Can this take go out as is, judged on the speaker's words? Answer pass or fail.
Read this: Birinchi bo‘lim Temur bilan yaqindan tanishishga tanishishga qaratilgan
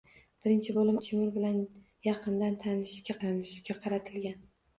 pass